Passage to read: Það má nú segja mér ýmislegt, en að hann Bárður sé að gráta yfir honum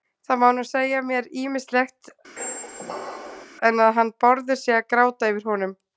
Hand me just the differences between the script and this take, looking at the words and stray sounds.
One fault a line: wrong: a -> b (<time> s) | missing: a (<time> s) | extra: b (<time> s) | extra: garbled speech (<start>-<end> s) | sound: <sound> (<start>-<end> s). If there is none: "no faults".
sound: squeak (2.4-3.5 s)